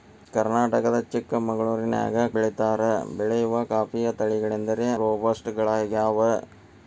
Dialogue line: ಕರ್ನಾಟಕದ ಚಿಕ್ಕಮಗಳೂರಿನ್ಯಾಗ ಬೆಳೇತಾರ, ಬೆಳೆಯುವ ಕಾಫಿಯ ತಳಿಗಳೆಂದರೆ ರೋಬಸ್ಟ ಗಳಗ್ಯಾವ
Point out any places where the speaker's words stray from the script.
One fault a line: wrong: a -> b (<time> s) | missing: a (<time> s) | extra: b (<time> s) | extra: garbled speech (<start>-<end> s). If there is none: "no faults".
no faults